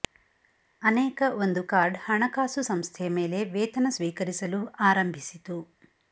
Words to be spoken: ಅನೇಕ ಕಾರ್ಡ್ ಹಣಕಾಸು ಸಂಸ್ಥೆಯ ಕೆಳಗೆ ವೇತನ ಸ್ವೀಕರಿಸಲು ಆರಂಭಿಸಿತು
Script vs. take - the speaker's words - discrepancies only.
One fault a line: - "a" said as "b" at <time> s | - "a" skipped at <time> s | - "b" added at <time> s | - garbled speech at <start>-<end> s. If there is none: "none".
- "ಒಂದು" added at 1.4 s
- "ಕೆಳಗೆ" said as "ಮೇಲೆ" at 3.2 s